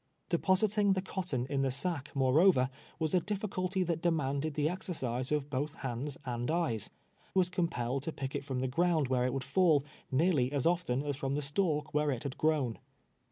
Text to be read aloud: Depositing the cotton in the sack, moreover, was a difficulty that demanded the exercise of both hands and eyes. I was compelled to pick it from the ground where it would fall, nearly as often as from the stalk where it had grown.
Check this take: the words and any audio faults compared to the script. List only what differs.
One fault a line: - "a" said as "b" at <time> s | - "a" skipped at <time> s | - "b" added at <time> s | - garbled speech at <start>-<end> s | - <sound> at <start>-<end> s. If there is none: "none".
- "I" skipped at 6.9 s